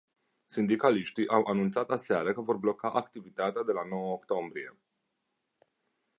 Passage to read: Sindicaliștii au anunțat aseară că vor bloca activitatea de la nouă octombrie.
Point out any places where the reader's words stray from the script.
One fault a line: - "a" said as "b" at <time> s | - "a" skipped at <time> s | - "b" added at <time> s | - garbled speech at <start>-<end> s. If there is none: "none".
none